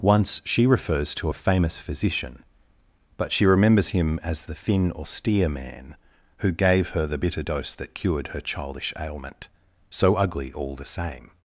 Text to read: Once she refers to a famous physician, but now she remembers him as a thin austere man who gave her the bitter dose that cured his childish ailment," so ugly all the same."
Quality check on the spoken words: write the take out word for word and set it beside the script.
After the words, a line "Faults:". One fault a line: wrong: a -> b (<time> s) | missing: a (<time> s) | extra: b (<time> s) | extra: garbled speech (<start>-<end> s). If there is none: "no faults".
Once she refers to a famous physician, but she remembers him as the thin austere man who gave her the bitter dose that cured her childish ailment," so ugly all the same."
Faults:
missing: now (3.3 s)
wrong: a -> the (4.4 s)
wrong: his -> her (8.3 s)